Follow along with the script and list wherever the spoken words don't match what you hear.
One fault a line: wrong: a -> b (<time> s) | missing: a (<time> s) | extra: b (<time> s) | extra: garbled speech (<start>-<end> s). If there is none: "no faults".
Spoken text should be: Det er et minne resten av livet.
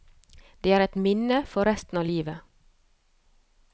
extra: for (1.5 s)